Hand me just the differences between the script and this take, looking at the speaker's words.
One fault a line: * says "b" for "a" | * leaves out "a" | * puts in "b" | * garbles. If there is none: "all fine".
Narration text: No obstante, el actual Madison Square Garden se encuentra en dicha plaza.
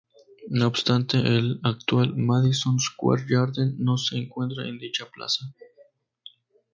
* puts in "no"